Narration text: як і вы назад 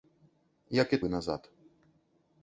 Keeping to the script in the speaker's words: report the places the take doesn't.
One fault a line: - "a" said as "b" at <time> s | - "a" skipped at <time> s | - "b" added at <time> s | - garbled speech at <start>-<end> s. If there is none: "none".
none